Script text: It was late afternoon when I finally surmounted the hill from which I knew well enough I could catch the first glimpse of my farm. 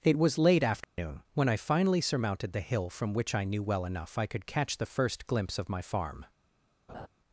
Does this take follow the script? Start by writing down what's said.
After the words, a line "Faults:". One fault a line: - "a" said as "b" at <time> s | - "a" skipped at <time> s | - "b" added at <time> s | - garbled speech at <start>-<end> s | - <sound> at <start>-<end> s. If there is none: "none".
It was late afternoon when I finally surmounted the hill from which I knew well enough I could catch the first glimpse of my farm.
Faults:
- dropout at 0.8-1.0 s
- laugh at 6.9-7.1 s